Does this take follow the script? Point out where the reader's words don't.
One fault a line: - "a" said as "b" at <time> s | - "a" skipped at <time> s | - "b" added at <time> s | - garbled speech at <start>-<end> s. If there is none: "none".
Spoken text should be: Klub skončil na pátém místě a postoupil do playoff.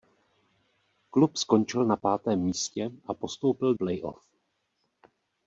- "do" skipped at 3.7 s